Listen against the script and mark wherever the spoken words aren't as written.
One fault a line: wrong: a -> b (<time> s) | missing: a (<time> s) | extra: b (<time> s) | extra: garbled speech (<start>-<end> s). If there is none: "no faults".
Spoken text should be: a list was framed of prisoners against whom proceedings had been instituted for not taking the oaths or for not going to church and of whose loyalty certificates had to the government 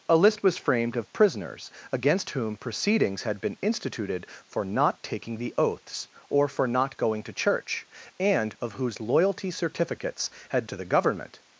no faults